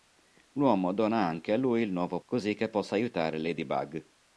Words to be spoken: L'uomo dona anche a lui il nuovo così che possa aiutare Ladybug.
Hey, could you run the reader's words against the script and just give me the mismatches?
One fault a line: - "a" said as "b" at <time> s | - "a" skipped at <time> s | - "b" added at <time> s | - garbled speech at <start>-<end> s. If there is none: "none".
none